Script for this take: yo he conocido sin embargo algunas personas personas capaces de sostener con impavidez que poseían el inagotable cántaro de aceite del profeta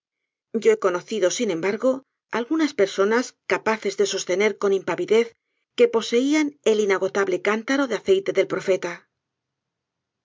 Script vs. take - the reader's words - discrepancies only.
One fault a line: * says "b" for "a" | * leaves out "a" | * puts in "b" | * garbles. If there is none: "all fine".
* leaves out "personas"